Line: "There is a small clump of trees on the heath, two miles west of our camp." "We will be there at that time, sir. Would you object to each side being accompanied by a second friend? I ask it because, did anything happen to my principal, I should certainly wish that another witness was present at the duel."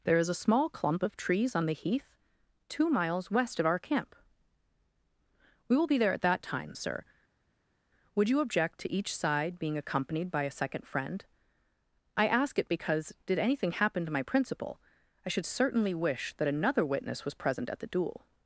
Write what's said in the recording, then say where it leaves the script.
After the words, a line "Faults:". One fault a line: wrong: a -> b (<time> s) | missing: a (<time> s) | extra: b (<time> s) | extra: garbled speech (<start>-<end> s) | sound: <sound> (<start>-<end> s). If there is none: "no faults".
"There is a small clump of trees on the heath, two miles west of our camp." "We will be there at that time, sir. Would you object to each side being accompanied by a second friend? I ask it because, did anything happen to my principal, I should certainly wish that another witness was present at the duel."
Faults:
no faults